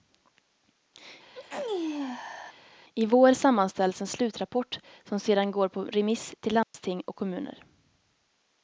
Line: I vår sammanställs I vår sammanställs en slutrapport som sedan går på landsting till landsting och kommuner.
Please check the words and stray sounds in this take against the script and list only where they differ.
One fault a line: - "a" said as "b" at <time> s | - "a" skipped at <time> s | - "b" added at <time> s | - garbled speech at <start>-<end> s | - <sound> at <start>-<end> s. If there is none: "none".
- sneeze at 1.3-2.5 s
- "I vår sammanställs" skipped at 4.0 s
- "landsting" said as "remiss" at 5.8 s
- dropout at 6.6-6.7 s